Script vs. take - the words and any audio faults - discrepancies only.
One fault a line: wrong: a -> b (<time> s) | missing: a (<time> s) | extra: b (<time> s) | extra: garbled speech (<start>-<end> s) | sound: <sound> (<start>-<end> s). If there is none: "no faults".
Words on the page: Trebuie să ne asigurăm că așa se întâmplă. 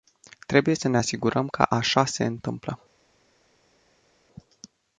no faults